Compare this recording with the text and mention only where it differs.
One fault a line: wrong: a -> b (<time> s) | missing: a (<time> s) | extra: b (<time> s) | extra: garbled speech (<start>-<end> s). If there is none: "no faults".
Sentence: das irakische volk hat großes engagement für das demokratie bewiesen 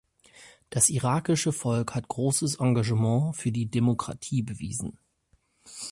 wrong: das -> die (3.5 s)